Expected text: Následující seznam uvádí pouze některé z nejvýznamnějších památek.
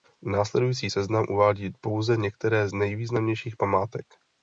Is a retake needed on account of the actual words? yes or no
no